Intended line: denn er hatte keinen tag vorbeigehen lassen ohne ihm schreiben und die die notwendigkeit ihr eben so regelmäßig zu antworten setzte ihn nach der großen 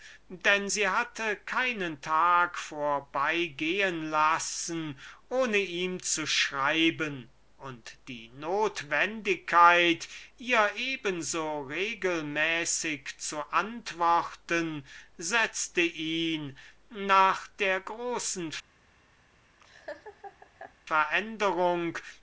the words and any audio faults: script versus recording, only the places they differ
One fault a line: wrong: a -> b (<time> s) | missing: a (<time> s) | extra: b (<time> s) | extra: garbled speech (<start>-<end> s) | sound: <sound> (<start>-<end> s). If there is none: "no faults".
wrong: er -> sie (0.6 s)
extra: zu (6.0 s)
missing: die (8.3 s)
sound: laugh (19.6-20.8 s)